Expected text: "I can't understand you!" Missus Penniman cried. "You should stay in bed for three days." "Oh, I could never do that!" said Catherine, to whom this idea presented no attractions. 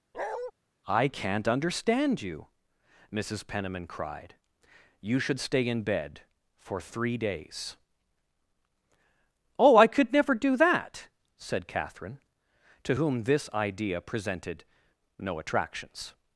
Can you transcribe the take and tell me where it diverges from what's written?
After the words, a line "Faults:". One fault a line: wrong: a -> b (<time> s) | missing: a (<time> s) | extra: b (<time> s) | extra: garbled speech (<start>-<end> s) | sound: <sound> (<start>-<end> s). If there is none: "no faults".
"I can't understand you!" Missus Penniman cried. "You should stay in bed for three days." "Oh, I could never do that!" said Catherine, to whom this idea presented no attractions.
Faults:
sound: bark (0.1-0.5 s)